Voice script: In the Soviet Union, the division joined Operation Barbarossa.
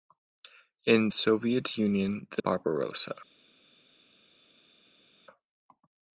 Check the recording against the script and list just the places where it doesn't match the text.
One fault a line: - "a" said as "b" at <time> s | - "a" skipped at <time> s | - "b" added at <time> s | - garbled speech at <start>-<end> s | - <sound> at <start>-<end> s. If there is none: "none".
- "the" skipped at 1.1 s
- "division joined Operation" skipped at 2.4 s